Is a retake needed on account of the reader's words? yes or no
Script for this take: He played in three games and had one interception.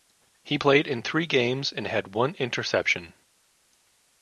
no